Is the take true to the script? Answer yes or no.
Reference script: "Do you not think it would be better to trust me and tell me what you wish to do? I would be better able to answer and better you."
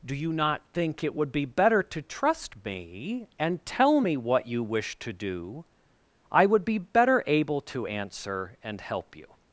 no